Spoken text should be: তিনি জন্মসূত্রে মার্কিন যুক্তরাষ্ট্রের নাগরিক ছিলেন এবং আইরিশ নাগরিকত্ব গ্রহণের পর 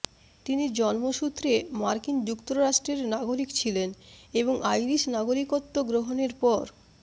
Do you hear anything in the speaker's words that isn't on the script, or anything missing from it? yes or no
no